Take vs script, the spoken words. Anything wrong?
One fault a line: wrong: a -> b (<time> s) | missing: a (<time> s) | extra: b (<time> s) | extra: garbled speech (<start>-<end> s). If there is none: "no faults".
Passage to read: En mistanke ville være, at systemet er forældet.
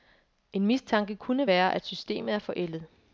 wrong: ville -> kunne (1.1 s)